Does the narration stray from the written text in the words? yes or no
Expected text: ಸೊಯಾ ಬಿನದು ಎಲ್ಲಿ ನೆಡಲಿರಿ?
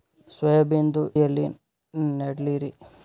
no